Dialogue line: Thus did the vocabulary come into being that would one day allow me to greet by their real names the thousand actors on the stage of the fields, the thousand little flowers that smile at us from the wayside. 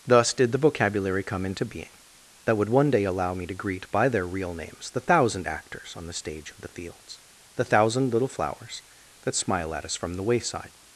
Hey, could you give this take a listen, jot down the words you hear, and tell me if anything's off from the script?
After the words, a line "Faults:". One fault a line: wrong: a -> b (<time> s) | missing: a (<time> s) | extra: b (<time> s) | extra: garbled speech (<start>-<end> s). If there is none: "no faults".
Thus did the vocabulary come into being that would one day allow me to greet by their real names the thousand actors on the stage of the fields, the thousand little flowers that smile at us from the wayside.
Faults:
no faults